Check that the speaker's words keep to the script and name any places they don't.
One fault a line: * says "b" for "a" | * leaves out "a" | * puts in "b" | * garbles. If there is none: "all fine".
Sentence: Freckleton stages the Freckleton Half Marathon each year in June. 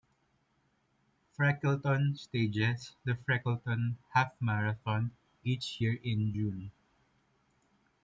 all fine